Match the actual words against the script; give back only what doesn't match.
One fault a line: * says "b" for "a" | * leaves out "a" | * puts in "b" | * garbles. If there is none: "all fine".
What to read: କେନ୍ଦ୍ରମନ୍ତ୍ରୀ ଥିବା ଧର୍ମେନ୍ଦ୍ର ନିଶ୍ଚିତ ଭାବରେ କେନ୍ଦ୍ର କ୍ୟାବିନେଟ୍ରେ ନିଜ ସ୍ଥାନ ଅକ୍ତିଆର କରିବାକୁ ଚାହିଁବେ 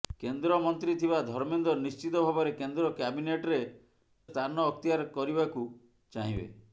* leaves out "ନିଜ"